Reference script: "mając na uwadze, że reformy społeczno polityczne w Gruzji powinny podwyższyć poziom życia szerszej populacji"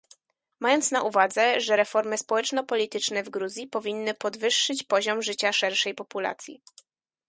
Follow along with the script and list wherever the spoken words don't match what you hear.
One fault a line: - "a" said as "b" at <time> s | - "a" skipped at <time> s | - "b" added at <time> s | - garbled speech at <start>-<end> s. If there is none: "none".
none